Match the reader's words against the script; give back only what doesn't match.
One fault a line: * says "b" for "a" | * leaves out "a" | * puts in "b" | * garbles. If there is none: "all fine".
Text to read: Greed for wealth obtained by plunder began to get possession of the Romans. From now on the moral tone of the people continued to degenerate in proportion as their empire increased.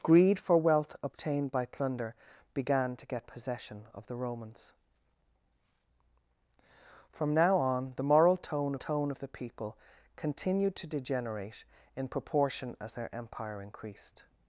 * puts in "tone"